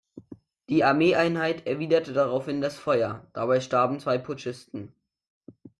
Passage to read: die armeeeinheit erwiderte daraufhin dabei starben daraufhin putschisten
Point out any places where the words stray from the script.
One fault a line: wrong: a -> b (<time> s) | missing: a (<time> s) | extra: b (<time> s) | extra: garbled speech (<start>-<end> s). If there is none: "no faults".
extra: das feuer (2.6 s)
wrong: daraufhin -> zwei (4.0 s)